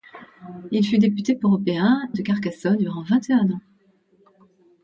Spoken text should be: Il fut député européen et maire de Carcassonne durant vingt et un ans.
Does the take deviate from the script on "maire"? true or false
true